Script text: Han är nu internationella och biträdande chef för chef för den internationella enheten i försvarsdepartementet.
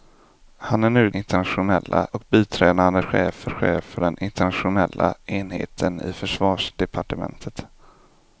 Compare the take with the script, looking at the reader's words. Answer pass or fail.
pass